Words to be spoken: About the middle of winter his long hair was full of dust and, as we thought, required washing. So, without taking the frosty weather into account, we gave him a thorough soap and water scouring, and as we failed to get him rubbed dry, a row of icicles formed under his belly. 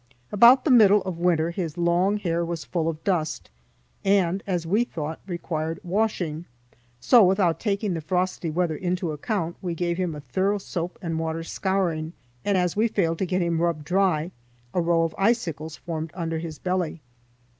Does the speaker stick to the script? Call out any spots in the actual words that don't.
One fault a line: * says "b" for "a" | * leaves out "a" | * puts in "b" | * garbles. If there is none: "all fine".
all fine